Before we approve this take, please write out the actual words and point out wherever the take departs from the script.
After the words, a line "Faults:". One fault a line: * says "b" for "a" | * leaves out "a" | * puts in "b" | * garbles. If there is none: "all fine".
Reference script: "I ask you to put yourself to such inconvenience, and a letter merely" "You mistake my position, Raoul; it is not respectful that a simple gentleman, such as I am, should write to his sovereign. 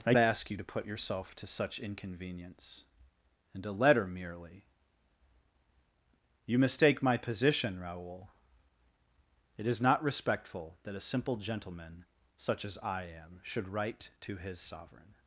"I ask you to put yourself to such inconvenience, and a letter merely" "You mistake my position, Raoul; it is not respectful that a simple gentleman, such as I am, should write to his sovereign.
Faults:
all fine